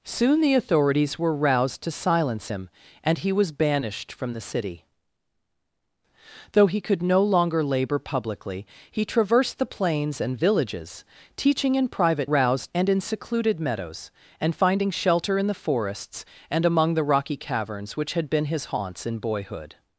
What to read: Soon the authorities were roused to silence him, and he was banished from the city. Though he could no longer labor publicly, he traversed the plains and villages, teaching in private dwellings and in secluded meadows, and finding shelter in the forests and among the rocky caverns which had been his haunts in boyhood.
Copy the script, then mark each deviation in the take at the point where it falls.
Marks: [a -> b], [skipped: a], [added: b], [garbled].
Soon the authorities were roused to silence him, and he was banished from the city. Though he could no longer labor publicly, he traversed the plains and villages, teaching in private [dwellings -> roused] and in secluded meadows, and finding shelter in the forests and among the rocky caverns which had been his haunts in boyhood.